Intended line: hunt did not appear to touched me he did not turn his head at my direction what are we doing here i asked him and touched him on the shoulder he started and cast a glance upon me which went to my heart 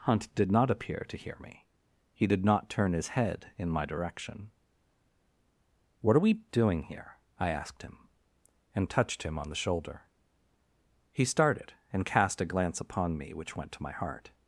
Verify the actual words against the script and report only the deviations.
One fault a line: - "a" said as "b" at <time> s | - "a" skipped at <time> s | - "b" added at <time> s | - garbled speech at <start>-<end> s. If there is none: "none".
- "touched" said as "hear" at 1.2 s
- "at" said as "in" at 3.6 s